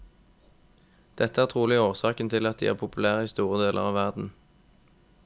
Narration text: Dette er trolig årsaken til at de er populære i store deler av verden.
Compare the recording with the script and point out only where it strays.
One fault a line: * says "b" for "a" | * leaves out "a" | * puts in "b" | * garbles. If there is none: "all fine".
all fine